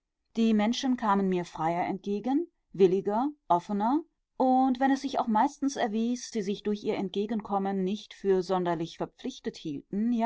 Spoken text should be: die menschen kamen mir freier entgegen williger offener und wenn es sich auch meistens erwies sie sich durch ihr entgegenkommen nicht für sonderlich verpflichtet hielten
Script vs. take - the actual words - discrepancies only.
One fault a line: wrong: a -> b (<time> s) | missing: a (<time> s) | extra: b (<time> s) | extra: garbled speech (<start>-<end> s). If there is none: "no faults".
no faults